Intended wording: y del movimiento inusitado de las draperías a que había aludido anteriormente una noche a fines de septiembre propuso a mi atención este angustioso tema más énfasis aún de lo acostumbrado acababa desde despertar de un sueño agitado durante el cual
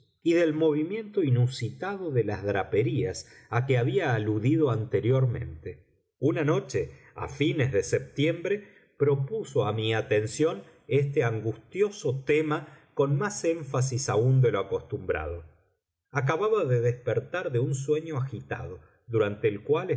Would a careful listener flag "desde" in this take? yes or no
yes